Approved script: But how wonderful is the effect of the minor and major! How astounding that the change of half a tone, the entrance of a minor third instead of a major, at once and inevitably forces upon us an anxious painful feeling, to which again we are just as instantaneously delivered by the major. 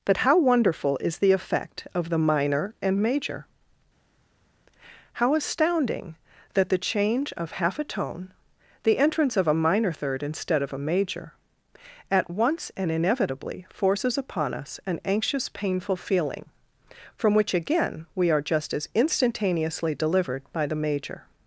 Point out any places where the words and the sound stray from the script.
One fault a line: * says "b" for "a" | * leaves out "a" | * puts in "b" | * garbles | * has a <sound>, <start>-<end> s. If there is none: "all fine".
* says "from" for "to"